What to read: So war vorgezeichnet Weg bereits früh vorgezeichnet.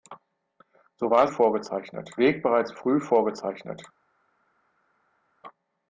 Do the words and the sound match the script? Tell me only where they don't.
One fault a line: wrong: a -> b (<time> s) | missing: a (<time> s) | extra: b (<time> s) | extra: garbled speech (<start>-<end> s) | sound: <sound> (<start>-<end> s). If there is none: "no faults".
no faults